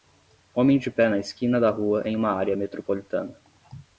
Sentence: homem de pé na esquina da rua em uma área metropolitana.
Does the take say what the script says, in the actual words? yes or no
yes